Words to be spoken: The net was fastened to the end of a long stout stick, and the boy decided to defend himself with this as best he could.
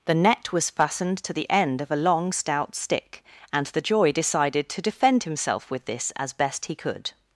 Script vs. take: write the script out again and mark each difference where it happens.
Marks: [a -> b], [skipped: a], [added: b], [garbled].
The net was fastened to the end of a long stout stick, and the [boy -> joy] decided to defend himself with this as best he could.